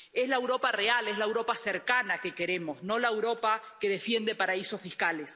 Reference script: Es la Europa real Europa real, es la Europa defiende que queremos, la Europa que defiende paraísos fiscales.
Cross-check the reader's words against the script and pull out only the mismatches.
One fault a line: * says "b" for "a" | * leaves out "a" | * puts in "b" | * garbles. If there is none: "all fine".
* leaves out "Europa real"
* says "cercana" for "defiende"
* puts in "no"